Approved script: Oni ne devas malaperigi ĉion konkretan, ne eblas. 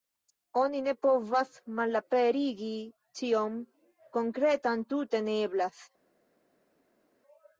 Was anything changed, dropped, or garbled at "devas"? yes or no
yes